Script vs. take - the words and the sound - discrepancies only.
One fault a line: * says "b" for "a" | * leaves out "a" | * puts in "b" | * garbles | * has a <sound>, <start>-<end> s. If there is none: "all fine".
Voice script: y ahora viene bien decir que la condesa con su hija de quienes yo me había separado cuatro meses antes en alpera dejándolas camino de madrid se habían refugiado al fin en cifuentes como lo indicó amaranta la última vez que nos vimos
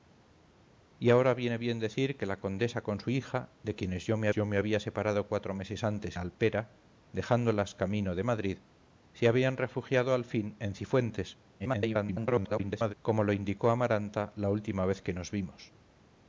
* puts in "yo me"
* leaves out "en"
* garbles